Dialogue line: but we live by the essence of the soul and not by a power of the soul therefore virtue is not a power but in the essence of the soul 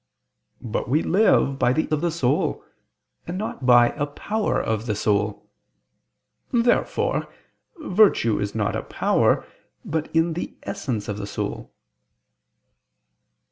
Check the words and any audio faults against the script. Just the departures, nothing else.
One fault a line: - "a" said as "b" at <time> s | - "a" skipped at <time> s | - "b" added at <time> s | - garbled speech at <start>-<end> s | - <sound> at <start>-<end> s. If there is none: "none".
- "essence" skipped at 1.9 s